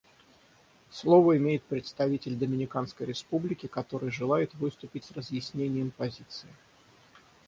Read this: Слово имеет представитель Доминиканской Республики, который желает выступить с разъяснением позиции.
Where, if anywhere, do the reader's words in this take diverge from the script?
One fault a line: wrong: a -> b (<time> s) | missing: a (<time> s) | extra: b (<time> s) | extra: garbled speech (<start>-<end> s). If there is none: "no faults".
no faults